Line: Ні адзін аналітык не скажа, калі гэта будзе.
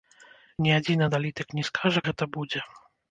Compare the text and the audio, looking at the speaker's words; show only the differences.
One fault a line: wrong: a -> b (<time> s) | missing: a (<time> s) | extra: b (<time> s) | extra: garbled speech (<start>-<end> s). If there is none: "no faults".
missing: калі (2.0 s)